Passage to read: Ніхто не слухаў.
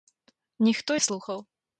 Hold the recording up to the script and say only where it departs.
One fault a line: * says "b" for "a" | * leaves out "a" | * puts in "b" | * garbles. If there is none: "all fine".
all fine